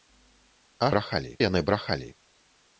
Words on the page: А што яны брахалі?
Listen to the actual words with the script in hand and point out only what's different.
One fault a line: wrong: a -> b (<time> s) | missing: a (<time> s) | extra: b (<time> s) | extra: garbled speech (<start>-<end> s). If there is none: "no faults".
wrong: што -> брахалі (0.9 s)